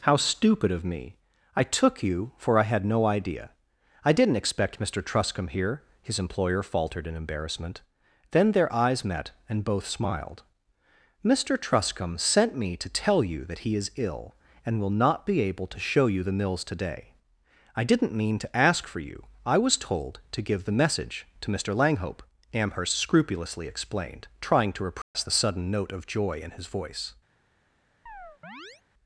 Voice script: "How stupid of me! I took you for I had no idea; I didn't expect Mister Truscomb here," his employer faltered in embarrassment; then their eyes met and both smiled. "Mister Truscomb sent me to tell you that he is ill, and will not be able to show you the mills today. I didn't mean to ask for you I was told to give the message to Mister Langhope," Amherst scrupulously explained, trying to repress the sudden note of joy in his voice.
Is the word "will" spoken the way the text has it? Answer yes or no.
yes